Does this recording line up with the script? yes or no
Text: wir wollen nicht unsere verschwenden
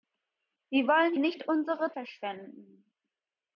yes